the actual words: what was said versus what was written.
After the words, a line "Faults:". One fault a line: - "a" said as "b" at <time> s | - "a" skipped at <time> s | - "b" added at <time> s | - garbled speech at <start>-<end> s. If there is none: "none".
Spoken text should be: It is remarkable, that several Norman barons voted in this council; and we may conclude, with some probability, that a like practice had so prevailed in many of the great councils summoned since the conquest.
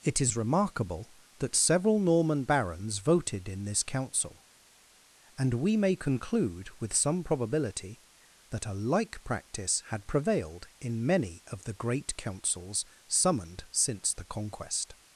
It is remarkable, that several Norman barons voted in this council; and we may conclude, with some probability, that a like practice had prevailed in many of the great councils summoned since the conquest.
Faults:
- "so" skipped at 10.1 s